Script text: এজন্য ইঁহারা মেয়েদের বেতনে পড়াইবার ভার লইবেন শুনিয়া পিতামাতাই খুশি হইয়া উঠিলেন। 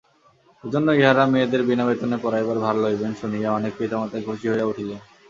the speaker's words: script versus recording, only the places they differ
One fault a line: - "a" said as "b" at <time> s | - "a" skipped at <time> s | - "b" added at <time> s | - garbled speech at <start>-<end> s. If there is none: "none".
- "বিনা" added at 1.6 s
- "অনেক" added at 3.5 s